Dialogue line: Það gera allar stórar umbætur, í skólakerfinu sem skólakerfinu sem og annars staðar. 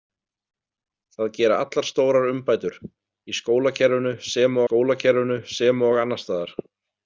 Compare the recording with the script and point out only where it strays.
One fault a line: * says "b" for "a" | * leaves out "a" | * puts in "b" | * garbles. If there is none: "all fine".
all fine